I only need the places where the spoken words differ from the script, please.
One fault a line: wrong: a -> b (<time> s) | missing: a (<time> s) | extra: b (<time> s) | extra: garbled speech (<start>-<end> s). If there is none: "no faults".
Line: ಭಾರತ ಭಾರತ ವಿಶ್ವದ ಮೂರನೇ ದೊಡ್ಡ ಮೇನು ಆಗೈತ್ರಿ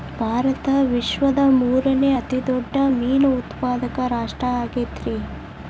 missing: ಭಾರತ (0.7 s)
extra: ಅತಿ (2.1 s)
extra: ಉತ್ಪಾದಕ ರಾಷ್ಟ್ರ (3.4 s)